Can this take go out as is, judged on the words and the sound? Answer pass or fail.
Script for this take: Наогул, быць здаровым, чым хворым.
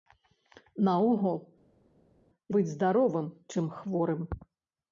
pass